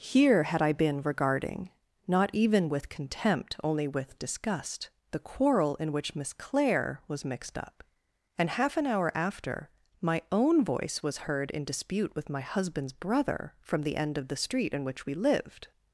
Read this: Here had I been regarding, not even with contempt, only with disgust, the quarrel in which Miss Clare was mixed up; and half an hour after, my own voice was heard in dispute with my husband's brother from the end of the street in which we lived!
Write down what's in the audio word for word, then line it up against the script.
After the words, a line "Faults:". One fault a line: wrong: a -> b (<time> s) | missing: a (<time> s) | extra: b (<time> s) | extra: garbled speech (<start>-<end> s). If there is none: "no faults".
Here had I been regarding, not even with contempt, only with disgust, the quarrel in which Miss Clare was mixed up; and half an hour after, my own voice was heard in dispute with my husband's brother from the end of the street in which we lived!
Faults:
no faults